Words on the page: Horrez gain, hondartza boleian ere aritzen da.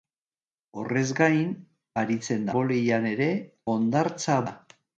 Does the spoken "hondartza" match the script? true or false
false